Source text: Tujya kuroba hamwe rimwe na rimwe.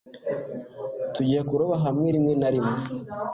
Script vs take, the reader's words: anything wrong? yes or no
no